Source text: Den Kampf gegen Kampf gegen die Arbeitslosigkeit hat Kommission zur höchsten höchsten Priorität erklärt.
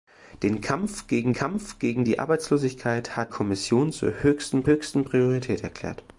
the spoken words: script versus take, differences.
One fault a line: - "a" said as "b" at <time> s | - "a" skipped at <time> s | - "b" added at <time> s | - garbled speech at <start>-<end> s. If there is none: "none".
none